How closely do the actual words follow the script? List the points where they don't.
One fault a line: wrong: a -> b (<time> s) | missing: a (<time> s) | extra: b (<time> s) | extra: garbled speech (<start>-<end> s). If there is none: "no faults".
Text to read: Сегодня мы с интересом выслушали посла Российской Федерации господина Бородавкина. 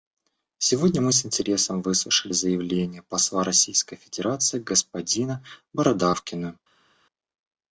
extra: заявление (2.3 s)